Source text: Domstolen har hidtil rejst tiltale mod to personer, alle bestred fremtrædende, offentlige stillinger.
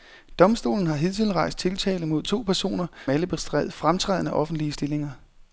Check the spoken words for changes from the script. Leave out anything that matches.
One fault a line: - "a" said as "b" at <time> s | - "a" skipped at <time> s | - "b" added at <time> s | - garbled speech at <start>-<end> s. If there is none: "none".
none